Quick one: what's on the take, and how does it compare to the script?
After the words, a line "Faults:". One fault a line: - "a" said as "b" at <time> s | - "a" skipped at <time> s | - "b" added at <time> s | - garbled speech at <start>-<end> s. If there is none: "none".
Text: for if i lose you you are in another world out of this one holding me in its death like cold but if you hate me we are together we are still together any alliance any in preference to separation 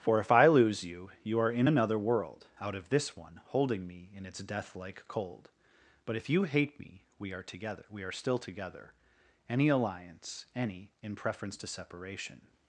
for if i lose you you are in another world out of this one holding me in its death like cold but if you hate me we are together we are still together any alliance any in preference to separation
Faults:
none